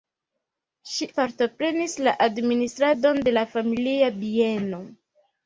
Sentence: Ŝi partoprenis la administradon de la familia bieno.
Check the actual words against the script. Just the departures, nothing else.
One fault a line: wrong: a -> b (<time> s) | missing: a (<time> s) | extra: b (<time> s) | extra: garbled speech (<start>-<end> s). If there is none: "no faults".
no faults